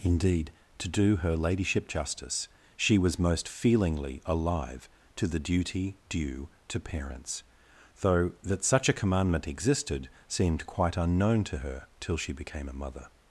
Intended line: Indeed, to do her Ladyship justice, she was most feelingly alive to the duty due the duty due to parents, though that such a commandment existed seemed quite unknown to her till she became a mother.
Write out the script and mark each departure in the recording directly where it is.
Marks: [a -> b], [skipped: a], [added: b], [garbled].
Indeed, to do her Ladyship justice, she was most feelingly alive to the duty due [skipped: the duty due] to parents, though that such a commandment existed seemed quite unknown to her till she became a mother.